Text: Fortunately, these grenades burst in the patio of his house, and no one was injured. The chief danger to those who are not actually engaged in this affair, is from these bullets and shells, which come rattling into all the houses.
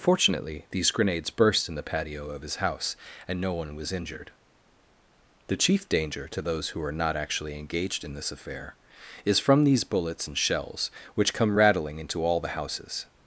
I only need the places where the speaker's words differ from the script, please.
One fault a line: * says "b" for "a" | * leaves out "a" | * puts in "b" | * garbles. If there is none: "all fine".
all fine